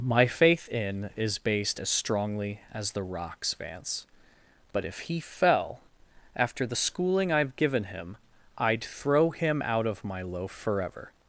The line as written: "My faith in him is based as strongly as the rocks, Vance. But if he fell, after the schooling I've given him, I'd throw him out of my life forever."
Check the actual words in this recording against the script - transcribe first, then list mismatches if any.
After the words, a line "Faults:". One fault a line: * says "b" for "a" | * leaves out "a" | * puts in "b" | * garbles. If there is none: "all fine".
"My faith in is based as strongly as the rocks, Vance. But if he fell, after the schooling I've given him, I'd throw him out of my loaf forever."
Faults:
* leaves out "him"
* says "loaf" for "life"